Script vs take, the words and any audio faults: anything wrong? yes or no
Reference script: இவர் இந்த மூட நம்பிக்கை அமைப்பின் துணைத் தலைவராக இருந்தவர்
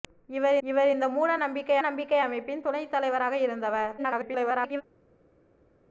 yes